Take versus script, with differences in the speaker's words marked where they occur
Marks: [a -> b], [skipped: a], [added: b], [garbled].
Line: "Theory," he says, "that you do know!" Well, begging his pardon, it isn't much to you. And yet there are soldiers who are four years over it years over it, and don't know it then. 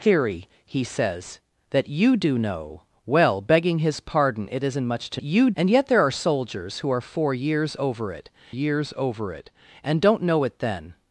"Theory," he says, "that you do know!" Well, begging his pardon, it isn't much to you. And yet there are soldiers who are four years over it years over it, and don't know it then.